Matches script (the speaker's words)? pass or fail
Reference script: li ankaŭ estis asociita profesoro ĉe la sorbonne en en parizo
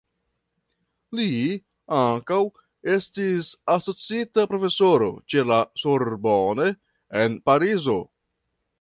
fail